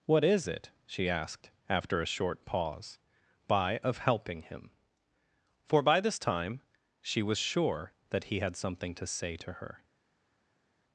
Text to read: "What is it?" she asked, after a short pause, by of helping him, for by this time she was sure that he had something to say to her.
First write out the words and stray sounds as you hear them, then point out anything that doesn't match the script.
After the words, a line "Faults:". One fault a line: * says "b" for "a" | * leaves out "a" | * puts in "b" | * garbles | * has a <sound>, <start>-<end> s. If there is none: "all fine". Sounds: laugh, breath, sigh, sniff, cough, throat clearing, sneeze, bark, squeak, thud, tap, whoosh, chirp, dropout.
"What is it?" she asked, after a short pause, by of helping him, for by this time she was sure that he had something to say to her.
Faults:
all fine